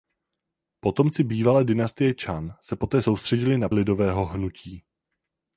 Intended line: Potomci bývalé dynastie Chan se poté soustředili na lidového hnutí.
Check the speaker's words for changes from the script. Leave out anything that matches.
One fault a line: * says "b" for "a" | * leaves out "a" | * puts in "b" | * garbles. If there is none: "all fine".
all fine